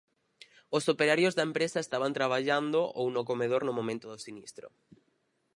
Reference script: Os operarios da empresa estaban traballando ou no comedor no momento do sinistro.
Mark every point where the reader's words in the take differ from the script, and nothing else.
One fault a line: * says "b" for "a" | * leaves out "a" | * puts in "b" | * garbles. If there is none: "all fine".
all fine